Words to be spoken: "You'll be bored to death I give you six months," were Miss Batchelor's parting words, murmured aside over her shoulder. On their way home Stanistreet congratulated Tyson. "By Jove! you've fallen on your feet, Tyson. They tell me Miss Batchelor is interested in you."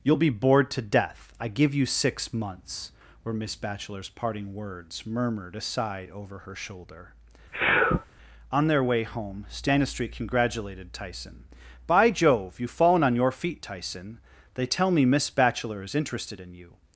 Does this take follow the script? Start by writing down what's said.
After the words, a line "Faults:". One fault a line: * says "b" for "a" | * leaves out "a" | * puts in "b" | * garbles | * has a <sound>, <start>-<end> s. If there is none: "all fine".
"You'll be bored to death I give you six months," were Miss Batchelor's parting words, murmured aside over her shoulder. On their way home Stanistreet congratulated Tyson. "By Jove! you've fallen on your feet, Tyson. They tell me Miss Batchelor is interested in you."
Faults:
* has a sneeze, 7.5-8.1 s